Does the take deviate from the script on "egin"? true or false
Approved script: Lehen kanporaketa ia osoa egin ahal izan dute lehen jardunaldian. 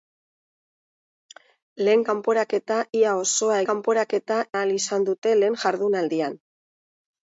true